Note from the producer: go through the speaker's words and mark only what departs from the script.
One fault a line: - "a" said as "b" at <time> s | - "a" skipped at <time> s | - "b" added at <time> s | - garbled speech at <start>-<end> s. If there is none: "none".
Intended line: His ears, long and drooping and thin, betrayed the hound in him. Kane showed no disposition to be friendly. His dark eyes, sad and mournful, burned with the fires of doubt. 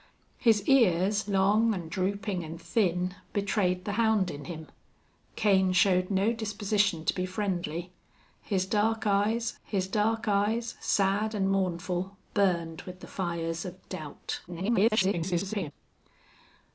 - "his dark eyes" added at 9.6 s
- garbled speech at 14.5-15.7 s